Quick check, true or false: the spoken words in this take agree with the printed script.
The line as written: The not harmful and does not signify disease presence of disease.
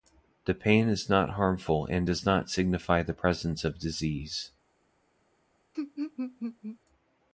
false